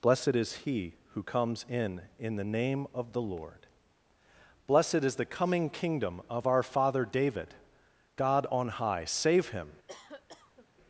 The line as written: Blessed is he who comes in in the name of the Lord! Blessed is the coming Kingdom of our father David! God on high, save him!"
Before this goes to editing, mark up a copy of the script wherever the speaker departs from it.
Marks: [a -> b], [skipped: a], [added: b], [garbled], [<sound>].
Blessed is he who comes in in the name of the Lord! Blessed is the coming Kingdom of our father David! God on high, save him!" [cough]